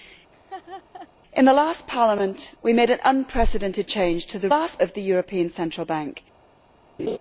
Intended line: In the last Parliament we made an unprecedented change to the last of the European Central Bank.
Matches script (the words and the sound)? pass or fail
fail